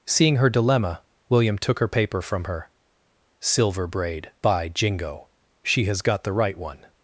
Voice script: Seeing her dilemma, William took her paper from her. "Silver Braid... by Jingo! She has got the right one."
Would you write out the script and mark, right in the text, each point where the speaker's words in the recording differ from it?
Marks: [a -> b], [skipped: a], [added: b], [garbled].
Seeing her dilemma, William took her paper from her. "Silver Braid... by Jingo! She has got the right one."